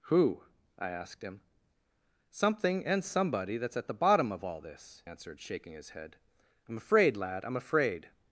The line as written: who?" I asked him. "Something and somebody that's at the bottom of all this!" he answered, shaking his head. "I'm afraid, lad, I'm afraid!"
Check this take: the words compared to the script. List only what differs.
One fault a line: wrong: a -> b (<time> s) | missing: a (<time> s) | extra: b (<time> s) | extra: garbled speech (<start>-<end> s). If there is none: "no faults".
missing: he (5.0 s)